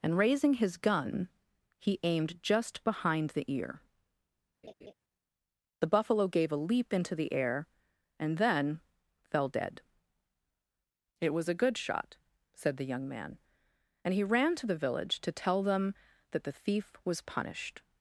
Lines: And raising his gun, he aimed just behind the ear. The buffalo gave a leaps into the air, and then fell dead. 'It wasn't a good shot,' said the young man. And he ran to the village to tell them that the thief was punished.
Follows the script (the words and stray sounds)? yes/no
no